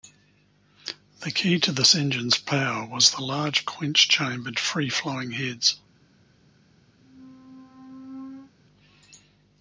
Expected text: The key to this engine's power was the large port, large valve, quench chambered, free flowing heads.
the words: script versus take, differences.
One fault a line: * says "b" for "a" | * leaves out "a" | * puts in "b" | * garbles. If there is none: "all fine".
* leaves out "port large valve"